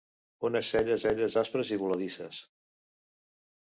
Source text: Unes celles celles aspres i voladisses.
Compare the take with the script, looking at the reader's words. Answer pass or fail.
pass